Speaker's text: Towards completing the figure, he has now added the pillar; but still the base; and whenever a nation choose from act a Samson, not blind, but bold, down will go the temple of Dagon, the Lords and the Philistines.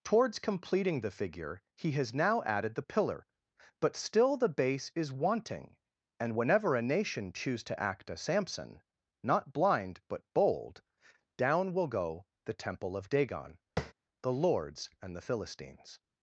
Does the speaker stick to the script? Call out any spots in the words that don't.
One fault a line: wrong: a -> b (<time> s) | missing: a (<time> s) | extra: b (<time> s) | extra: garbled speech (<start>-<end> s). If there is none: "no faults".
extra: is wanting (5.0 s)
wrong: from -> to (7.7 s)